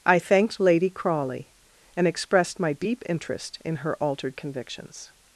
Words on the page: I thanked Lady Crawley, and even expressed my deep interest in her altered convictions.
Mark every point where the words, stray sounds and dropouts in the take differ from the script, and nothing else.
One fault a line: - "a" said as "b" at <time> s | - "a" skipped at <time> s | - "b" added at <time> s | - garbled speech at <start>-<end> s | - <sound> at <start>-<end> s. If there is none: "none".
- "even" skipped at 2.1 s